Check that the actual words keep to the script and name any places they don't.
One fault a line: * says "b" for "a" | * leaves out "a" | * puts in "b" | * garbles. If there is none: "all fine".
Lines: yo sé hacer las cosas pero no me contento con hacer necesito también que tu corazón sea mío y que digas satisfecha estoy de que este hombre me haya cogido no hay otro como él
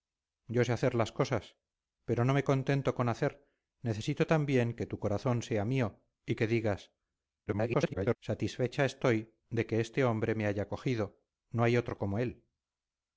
* garbles